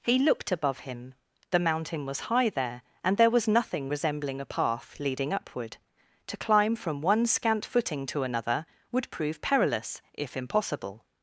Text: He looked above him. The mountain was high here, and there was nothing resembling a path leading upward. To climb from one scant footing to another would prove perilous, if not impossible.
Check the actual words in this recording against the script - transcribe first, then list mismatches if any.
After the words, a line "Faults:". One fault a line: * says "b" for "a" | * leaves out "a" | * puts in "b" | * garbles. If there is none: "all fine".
He looked above him. The mountain was high there, and there was nothing resembling a path leading upward. To climb from one scant footing to another would prove perilous, if impossible.
Faults:
* says "there" for "here"
* leaves out "not"